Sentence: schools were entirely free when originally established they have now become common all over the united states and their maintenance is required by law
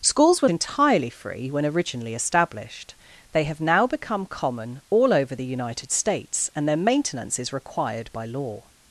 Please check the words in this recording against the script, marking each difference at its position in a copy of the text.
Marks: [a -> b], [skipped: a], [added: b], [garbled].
schools were entirely free when originally established they have now become common all over the united states and their maintenance is required by law